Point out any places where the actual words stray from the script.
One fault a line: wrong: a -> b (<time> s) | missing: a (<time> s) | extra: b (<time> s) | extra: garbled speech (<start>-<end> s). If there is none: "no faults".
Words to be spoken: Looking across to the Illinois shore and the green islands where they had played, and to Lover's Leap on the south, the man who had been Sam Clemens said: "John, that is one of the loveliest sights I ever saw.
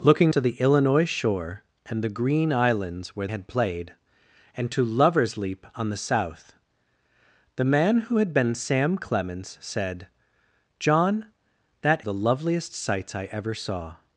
missing: across (0.3 s)
missing: they (3.3 s)
missing: is one of (12.1 s)